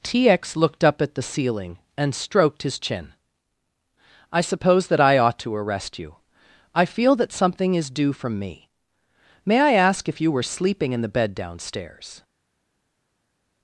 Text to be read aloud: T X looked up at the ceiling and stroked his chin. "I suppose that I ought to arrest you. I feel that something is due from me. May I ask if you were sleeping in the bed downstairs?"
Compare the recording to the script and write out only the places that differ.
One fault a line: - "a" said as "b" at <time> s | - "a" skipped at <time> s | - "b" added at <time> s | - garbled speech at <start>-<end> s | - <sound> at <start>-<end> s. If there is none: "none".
none